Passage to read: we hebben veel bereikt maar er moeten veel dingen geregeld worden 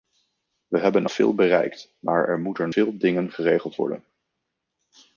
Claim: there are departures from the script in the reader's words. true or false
false